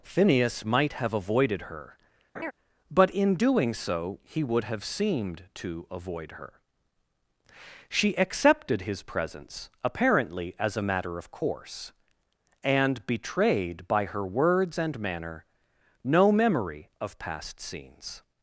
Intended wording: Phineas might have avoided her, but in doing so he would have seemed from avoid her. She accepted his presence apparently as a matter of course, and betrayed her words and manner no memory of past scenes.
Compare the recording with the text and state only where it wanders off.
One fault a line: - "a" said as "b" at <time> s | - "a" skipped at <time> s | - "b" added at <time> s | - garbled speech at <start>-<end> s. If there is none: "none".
- "from" said as "to" at 5.5 s
- "by" added at 13.9 s